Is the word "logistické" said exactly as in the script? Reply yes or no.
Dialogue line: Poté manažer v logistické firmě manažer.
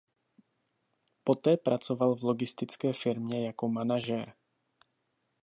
yes